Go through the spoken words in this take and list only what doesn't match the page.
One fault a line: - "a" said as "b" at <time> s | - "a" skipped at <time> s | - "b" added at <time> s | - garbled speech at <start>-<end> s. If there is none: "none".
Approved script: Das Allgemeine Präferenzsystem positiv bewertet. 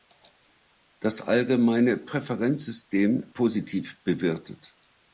none